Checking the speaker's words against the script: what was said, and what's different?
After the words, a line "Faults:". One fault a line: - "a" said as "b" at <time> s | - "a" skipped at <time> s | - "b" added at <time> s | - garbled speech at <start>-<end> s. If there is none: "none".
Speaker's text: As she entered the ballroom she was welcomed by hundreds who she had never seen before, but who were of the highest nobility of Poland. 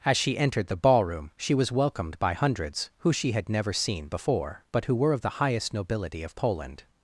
As she entered the ballroom she was welcomed by hundreds who she had never seen before, but who were of the highest nobility of Poland.
Faults:
none